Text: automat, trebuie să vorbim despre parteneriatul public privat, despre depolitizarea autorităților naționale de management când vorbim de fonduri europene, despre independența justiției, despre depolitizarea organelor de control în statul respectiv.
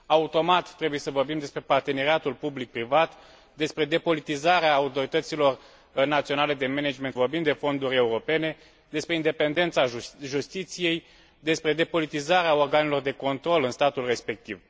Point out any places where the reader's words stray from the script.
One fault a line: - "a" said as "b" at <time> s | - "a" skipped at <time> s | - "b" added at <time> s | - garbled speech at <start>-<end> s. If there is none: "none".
- "când" skipped at 7.1 s